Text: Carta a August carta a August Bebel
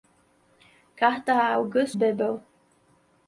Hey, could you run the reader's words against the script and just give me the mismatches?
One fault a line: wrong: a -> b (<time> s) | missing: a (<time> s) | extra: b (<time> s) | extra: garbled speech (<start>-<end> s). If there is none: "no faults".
missing: carta a August (2.0 s)